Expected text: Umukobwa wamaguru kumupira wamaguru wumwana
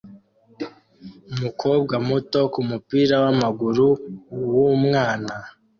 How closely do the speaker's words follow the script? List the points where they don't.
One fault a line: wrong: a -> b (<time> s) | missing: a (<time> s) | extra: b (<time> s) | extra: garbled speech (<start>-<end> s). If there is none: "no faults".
wrong: wamaguru -> muto (2.1 s)